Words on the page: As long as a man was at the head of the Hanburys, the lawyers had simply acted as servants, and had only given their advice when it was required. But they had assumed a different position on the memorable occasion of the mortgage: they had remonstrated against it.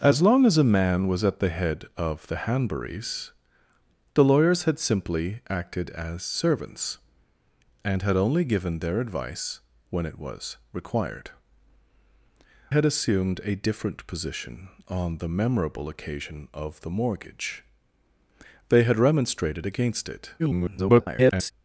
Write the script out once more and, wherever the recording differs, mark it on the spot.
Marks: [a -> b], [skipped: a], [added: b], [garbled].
As long as a man was at the head of the Hanburys, the lawyers had simply acted as servants, and had only given their advice when it was required. [skipped: But they] had assumed a different position on the memorable occasion of the mortgage: they had remonstrated against it. [garbled]